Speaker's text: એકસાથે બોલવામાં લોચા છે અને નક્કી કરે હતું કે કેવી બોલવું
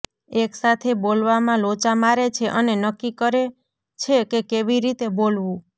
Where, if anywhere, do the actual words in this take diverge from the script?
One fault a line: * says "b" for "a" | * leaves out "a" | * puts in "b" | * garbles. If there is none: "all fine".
* puts in "મારે"
* says "છે" for "હતું"
* puts in "રીતે"